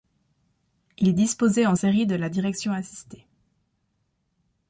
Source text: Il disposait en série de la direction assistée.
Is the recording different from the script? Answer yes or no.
no